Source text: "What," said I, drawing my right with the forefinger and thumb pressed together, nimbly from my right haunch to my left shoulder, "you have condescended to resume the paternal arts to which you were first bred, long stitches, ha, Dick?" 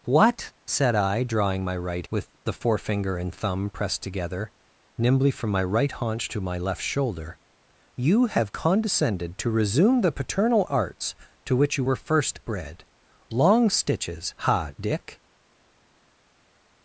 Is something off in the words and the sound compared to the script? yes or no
no